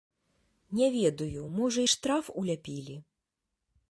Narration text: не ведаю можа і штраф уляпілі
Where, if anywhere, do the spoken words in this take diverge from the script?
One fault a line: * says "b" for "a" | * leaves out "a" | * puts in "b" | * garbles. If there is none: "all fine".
all fine